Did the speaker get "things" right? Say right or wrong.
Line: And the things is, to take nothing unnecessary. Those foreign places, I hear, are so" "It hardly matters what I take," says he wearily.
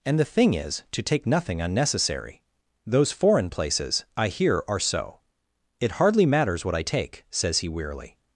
wrong